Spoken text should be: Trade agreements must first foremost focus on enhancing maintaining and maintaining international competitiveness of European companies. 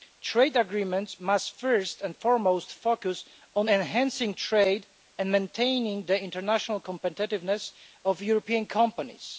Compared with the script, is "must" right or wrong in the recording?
right